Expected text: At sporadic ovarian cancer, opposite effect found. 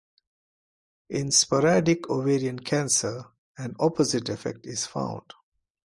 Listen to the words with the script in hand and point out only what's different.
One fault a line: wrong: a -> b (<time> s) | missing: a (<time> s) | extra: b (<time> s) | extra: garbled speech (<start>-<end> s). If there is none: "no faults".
wrong: At -> In (1.1 s)
extra: an (3.6 s)
extra: is (4.7 s)